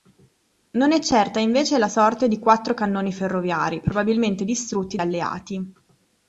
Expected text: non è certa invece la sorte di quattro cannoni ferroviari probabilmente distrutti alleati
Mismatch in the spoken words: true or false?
false